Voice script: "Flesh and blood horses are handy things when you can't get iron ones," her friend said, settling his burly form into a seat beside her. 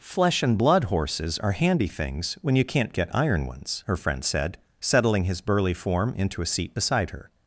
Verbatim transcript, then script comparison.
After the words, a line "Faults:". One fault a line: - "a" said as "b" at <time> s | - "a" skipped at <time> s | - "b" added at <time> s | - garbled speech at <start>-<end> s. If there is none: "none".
"Flesh and blood horses are handy things when you can't get iron ones," her friend said, settling his burly form into a seat beside her.
Faults:
none